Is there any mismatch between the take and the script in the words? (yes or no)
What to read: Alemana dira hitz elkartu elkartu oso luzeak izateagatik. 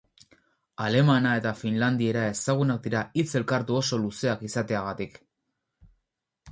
yes